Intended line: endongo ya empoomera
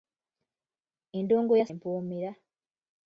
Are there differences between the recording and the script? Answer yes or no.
no